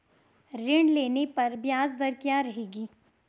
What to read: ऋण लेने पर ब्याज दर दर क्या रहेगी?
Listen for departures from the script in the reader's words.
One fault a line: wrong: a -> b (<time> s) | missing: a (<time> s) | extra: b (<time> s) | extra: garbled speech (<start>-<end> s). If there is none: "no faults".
missing: दर (2.1 s)